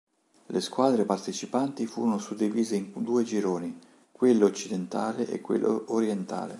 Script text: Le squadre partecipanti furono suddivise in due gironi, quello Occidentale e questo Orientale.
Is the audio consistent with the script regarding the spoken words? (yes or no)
no